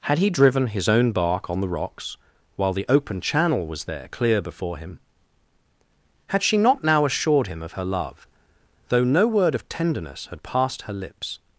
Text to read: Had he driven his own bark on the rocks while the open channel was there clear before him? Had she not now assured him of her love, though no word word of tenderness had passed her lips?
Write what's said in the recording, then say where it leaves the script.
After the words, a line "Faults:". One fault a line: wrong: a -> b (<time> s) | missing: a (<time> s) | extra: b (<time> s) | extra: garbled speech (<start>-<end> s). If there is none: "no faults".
Had he driven his own bark on the rocks while the open channel was there clear before him? Had she not now assured him of her love, though no word of tenderness had passed her lips?
Faults:
missing: word (9.5 s)